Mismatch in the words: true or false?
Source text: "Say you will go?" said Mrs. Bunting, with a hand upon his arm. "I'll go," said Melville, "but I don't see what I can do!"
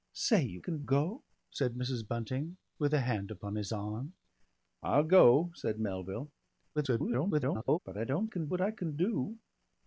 true